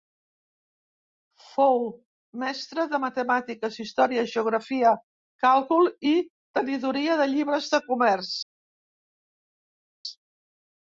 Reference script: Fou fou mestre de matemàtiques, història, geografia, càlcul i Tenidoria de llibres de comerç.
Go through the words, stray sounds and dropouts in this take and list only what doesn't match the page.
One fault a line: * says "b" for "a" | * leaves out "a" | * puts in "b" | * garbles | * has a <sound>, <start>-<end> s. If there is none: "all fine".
* leaves out "fou"